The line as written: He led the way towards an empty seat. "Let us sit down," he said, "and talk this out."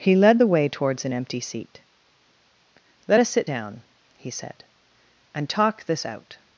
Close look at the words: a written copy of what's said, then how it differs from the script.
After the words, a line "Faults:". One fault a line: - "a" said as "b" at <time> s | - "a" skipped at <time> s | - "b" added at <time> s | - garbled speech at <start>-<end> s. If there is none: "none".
He led the way towards an empty seat. "Let us sit down," he said, "and talk this out."
Faults:
none